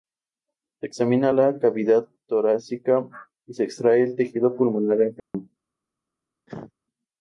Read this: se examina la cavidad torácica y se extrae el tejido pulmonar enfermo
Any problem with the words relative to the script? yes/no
no